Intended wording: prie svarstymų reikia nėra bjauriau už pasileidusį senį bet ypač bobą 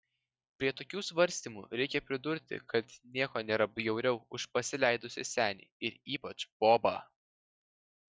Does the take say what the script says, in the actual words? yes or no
no